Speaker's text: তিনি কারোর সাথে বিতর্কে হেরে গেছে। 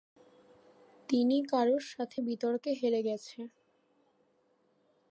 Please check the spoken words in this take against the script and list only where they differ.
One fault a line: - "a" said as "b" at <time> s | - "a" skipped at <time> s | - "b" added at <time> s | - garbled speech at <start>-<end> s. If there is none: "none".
none